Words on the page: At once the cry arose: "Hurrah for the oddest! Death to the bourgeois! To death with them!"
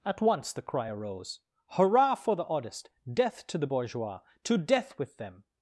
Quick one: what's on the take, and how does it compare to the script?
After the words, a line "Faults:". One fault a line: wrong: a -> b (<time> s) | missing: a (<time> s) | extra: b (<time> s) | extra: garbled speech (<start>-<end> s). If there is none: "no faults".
At once the cry arose: "Hurrah for the oddest! Death to the bourgeois! To death with them!"
Faults:
no faults